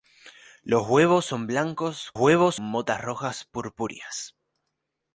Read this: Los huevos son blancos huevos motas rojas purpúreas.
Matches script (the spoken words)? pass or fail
pass